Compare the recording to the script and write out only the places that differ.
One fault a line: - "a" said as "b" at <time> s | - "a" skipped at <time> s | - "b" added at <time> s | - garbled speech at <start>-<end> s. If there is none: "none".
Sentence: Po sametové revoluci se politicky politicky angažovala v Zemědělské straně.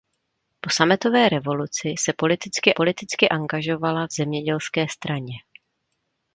none